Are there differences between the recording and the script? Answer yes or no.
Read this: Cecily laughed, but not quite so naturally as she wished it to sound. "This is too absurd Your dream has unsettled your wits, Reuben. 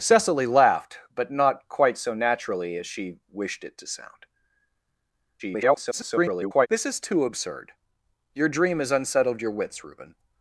yes